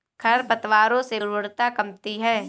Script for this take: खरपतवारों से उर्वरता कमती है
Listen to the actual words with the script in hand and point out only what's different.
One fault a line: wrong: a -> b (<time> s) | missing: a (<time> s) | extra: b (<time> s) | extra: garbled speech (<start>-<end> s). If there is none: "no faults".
no faults